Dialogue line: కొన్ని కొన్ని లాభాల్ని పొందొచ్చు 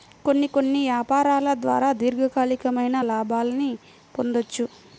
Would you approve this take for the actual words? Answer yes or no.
no